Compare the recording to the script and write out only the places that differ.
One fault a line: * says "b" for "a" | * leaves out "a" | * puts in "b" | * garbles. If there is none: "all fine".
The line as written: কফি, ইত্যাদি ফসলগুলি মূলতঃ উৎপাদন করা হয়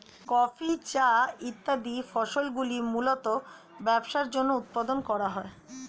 * puts in "চা"
* puts in "ব্যবসার জন্য"